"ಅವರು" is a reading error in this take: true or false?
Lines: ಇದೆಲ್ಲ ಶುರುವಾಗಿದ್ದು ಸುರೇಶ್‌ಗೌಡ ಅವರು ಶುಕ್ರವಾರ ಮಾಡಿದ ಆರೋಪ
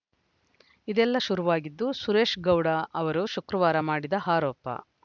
false